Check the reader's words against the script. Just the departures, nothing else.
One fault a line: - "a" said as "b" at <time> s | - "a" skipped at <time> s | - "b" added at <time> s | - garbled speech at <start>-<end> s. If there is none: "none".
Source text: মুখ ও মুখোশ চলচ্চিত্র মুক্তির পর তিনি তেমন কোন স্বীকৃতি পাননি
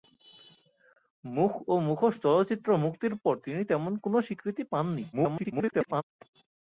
- garbled speech at 5.1-6.0 s